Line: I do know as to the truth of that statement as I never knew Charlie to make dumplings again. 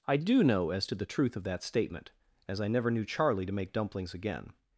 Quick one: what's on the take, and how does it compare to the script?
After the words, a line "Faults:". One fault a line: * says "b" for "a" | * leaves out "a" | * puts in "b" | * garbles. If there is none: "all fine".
I do know as to the truth of that statement as I never knew Charlie to make dumplings again.
Faults:
all fine